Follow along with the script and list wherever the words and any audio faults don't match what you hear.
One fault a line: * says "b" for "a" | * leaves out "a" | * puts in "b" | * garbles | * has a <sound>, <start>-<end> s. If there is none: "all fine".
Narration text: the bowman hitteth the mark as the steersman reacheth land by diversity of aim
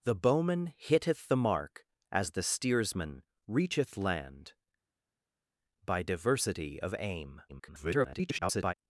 * garbles